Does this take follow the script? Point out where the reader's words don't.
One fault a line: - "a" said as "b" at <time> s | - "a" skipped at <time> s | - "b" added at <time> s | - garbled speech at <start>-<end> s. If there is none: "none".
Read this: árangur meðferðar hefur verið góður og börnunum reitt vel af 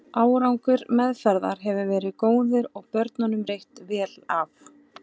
none